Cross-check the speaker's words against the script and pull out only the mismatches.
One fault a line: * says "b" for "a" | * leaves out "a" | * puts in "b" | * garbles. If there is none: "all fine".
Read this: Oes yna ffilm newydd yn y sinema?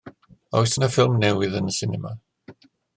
all fine